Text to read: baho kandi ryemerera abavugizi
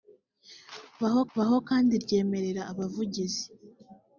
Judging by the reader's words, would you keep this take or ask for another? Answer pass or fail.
fail